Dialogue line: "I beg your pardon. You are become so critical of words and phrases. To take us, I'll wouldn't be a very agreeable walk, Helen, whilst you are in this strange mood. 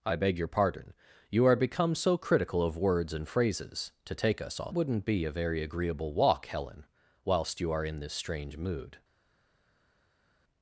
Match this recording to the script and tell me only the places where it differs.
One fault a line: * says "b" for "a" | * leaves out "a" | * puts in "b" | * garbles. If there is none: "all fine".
all fine